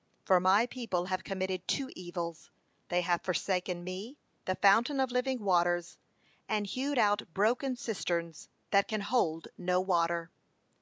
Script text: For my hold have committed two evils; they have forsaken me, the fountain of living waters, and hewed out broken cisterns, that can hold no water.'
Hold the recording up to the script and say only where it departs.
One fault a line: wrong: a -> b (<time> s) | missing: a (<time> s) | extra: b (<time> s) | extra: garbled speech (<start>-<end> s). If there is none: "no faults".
wrong: hold -> people (0.7 s)